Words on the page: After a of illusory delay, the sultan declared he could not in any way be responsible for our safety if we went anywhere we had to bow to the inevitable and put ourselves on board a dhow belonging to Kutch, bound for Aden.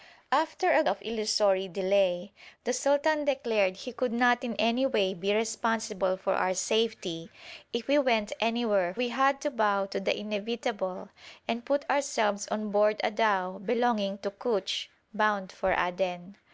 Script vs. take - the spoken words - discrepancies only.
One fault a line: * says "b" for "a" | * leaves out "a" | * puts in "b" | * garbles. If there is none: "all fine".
all fine